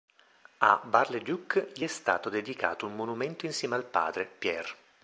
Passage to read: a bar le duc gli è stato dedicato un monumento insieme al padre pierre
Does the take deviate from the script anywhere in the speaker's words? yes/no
no